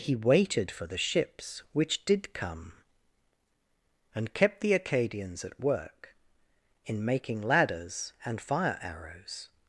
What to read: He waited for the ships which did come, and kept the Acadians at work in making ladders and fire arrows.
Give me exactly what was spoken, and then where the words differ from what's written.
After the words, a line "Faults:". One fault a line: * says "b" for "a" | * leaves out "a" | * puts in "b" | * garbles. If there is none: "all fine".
He waited for the ships which did come, and kept the Acadians at work in making ladders and fire arrows.
Faults:
all fine